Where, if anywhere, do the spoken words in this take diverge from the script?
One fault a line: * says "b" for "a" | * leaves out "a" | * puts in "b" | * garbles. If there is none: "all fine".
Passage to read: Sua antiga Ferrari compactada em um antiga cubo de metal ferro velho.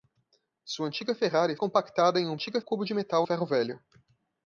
all fine